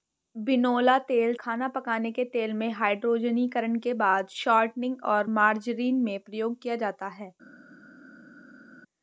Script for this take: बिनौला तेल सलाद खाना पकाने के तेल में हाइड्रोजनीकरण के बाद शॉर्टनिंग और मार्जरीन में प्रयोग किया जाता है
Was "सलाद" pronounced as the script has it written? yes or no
no